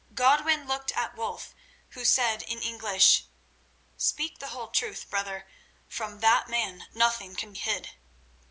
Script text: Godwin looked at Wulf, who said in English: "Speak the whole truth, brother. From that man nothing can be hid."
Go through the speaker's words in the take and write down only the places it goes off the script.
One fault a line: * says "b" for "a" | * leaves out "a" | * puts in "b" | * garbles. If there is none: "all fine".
* leaves out "be"